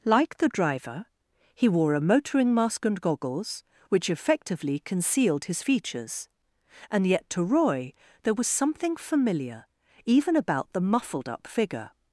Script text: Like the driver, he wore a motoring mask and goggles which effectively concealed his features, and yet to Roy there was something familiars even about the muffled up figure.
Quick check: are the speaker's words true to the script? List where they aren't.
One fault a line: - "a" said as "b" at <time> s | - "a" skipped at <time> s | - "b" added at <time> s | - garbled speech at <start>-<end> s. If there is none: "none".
- "familiars" said as "familiar" at 8.9 s